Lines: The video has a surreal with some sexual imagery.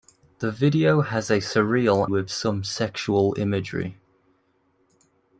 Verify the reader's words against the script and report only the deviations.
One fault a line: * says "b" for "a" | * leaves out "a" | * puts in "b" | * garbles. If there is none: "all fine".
all fine